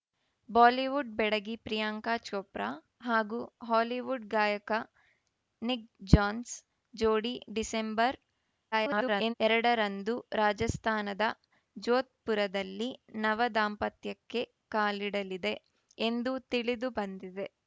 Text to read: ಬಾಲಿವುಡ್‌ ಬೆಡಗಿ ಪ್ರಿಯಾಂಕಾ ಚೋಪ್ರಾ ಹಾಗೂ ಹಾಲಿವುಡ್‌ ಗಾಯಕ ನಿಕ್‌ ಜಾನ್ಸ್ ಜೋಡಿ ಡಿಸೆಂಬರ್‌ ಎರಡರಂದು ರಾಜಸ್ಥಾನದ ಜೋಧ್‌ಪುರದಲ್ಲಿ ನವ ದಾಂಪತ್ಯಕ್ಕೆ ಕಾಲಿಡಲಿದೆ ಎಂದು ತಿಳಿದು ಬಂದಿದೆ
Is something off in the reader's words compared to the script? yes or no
yes